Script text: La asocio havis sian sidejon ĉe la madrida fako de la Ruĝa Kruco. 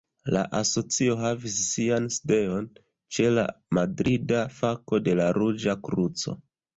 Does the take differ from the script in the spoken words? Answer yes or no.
no